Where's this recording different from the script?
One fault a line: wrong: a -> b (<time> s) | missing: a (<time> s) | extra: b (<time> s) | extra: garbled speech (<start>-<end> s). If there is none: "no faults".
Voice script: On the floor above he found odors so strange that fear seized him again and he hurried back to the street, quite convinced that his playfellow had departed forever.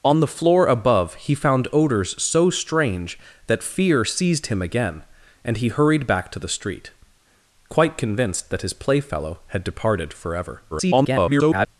extra: garbled speech (10.7-11.7 s)